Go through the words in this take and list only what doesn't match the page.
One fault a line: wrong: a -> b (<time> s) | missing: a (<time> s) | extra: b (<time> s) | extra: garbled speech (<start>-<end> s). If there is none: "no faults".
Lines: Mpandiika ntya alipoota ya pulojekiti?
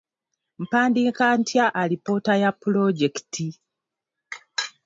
no faults